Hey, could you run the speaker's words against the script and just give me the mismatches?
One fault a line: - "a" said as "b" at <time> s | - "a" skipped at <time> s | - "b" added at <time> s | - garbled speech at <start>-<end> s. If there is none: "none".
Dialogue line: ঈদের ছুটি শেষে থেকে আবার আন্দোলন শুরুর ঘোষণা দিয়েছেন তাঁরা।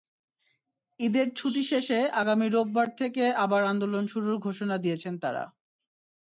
- "আগামী রোববার" added at 2.2 s